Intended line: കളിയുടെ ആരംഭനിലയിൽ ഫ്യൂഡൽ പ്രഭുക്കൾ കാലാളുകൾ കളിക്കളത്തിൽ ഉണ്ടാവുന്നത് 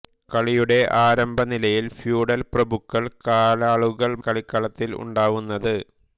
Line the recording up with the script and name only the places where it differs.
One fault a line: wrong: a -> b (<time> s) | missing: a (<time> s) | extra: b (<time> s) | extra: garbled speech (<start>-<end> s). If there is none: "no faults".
no faults